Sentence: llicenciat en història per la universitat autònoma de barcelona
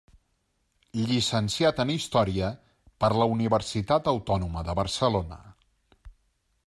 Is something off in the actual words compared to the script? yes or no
no